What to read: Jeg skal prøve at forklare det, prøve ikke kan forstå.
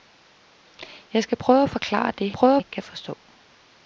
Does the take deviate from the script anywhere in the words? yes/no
no